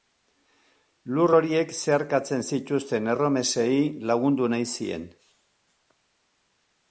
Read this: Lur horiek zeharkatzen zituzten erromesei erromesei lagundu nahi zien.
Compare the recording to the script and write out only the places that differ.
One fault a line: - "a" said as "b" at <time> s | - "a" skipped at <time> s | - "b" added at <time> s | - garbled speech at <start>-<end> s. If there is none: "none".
- "erromesei" skipped at 3.7 s